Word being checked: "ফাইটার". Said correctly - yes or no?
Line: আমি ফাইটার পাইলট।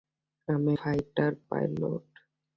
yes